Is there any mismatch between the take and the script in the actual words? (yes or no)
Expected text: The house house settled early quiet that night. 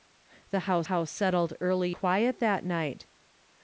no